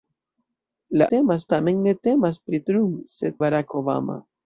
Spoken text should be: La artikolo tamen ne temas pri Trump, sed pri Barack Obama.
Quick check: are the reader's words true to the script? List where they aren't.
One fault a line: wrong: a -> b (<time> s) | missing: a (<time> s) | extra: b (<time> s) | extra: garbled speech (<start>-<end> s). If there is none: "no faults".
wrong: artikolo -> temas (1.1 s)
missing: pri (3.4 s)